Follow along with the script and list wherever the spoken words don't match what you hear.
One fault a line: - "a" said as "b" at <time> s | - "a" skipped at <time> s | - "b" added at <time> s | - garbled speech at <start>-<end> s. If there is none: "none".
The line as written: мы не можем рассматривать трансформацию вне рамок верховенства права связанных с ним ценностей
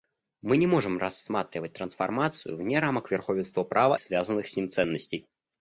none